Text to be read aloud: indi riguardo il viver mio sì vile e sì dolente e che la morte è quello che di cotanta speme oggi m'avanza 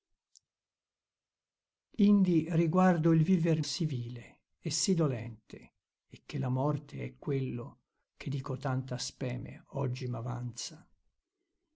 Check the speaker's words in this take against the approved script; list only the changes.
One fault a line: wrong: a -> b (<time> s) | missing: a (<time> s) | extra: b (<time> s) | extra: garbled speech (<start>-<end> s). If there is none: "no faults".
missing: mio (3.6 s)